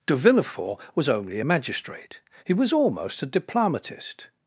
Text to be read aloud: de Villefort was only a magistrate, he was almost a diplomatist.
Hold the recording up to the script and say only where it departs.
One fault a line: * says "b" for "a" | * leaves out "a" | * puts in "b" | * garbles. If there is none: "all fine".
all fine